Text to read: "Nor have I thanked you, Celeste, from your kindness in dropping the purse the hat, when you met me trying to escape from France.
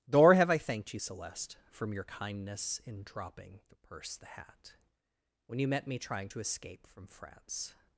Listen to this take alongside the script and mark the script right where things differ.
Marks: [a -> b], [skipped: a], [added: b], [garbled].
"Nor have I thanked you, Celeste, from your kindness in dropping the purse the hat, when you met me trying to escape from France.